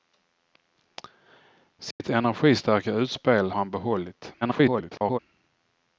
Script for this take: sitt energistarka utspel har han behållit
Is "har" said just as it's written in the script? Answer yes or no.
no